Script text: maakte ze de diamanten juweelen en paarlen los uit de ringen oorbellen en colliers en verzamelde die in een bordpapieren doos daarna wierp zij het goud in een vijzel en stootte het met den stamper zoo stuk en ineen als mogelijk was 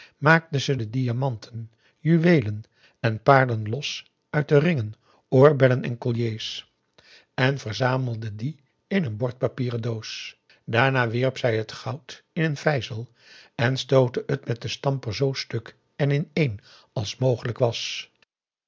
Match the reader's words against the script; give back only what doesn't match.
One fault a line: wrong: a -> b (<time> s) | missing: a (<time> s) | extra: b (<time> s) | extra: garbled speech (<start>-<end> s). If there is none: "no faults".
no faults